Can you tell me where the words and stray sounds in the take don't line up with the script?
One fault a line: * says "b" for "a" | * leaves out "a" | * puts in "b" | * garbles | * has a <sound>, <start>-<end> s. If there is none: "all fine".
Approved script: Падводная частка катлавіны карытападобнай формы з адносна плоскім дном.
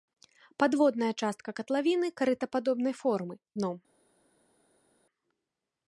* leaves out "з адносна плоскім"